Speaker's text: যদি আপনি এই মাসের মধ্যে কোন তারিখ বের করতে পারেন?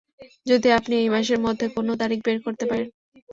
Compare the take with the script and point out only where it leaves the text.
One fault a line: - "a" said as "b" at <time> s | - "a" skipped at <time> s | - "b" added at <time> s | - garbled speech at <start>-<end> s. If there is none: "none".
none